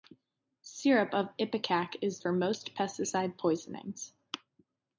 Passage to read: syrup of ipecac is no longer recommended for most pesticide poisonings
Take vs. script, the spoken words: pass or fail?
fail